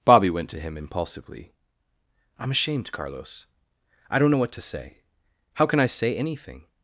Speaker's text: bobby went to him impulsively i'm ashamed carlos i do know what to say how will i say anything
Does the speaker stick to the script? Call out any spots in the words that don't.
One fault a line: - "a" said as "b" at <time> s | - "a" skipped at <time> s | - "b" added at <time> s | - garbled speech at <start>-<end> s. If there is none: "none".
- "do" said as "don't" at 4.2 s
- "will" said as "can" at 5.7 s